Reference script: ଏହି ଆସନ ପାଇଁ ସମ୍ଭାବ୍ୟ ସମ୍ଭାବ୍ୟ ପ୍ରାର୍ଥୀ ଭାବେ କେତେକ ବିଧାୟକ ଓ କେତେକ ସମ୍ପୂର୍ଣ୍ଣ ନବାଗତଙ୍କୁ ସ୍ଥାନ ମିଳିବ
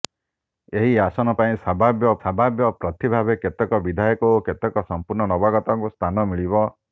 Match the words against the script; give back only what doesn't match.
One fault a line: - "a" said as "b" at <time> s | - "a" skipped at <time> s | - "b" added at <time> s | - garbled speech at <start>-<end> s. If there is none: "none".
none